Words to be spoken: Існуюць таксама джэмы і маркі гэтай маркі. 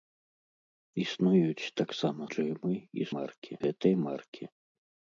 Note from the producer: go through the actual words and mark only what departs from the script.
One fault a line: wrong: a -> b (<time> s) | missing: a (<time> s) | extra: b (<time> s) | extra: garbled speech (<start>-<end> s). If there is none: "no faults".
no faults